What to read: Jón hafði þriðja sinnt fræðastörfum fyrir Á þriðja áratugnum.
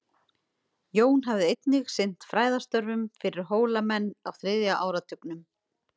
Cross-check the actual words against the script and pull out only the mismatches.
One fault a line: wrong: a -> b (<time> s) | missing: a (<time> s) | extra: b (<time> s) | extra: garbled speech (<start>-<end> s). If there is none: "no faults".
wrong: þriðja -> einnig (1.5 s)
extra: Hólamenn (3.5 s)